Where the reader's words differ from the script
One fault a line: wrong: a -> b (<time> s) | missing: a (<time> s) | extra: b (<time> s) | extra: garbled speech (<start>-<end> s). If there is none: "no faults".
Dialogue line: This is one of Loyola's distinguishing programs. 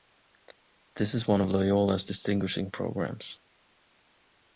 no faults